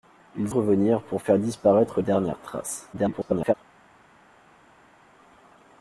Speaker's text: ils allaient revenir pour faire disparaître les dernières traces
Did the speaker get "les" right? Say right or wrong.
wrong